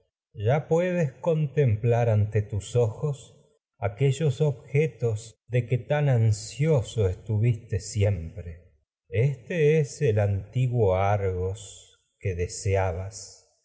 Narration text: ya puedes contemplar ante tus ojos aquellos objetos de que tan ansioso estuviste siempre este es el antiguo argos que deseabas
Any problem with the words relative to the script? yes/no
no